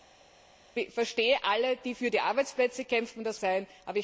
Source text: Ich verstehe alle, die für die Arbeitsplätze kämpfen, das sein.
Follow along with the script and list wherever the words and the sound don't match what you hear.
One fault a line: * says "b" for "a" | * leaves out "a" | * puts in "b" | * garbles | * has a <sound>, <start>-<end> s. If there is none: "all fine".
all fine